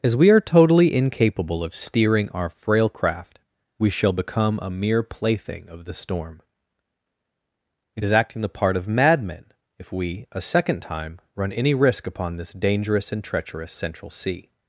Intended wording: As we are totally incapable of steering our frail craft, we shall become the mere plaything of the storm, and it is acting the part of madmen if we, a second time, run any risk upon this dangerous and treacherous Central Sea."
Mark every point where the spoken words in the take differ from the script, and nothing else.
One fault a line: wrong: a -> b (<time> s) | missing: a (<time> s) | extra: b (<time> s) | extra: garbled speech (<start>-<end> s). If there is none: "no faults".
wrong: the -> a (4.6 s)
missing: and (6.4 s)